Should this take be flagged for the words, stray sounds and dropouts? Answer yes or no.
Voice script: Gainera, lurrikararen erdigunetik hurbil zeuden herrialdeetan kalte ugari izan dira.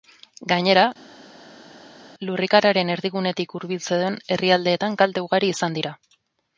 no